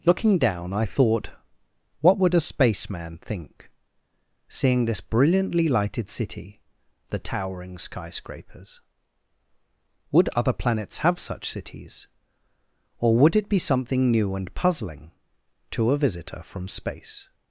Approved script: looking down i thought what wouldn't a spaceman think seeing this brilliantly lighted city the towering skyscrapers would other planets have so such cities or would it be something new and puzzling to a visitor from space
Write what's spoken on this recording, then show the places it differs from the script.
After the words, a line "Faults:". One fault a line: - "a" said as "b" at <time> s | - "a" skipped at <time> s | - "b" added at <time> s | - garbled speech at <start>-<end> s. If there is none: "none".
looking down i thought what would a spaceman think seeing this brilliantly lighted city the towering skyscrapers would other planets have such cities or would it be something new and puzzling to a visitor from space
Faults:
- "wouldn't" said as "would" at 2.2 s
- "so" skipped at 11.2 s